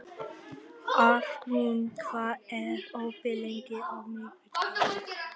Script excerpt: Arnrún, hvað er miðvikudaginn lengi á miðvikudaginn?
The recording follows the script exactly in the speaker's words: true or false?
false